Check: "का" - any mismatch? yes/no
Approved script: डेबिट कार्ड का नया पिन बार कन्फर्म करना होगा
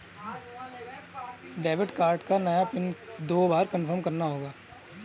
no